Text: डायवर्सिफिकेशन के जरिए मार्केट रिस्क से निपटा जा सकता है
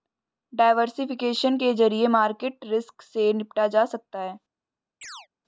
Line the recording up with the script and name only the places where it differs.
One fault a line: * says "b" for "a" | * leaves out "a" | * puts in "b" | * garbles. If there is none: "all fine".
all fine